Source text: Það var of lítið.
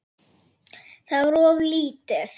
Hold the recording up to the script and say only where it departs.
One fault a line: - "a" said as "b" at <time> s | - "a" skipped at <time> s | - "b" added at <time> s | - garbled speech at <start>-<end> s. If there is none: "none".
none